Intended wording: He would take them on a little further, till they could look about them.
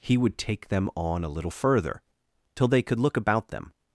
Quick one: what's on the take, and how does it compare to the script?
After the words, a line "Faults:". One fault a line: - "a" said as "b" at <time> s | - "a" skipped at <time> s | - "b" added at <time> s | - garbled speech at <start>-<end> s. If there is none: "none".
He would take them on a little further, till they could look about them.
Faults:
none